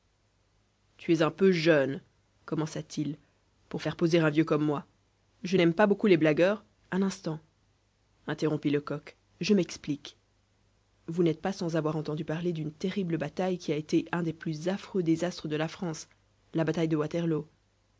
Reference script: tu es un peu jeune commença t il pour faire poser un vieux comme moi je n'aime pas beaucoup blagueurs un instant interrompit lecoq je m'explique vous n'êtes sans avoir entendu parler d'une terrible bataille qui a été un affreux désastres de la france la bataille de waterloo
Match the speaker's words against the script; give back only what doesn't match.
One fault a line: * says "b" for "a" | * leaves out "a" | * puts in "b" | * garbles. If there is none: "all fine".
* puts in "les"
* puts in "pas"
* puts in "des plus"